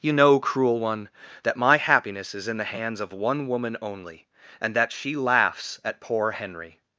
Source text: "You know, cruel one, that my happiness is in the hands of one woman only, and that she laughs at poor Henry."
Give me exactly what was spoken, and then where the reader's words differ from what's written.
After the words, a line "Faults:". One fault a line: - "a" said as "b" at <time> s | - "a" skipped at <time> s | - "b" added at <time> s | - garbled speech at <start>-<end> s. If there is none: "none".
"You know, cruel one, that my happiness is in the hands of one woman only, and that she laughs at poor Henry."
Faults:
none